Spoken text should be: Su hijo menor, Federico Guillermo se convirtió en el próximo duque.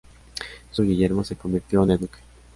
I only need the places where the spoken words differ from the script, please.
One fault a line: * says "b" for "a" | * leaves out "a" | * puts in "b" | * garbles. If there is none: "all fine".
* leaves out "hijo menor Federico"
* leaves out "próximo"